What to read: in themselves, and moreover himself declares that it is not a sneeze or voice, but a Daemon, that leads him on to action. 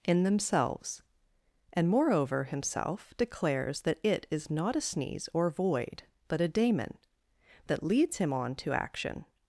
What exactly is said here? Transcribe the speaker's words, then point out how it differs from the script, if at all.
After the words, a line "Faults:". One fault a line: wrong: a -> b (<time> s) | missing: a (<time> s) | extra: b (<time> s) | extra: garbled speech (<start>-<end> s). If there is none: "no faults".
in themselves, and moreover himself declares that it is not a sneeze or void, but a Daemon, that leads him on to action.
Faults:
wrong: voice -> void (5.5 s)